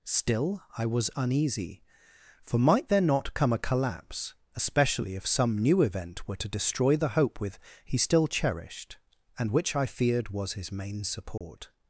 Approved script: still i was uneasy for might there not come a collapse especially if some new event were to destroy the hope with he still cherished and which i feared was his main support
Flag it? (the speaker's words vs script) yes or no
no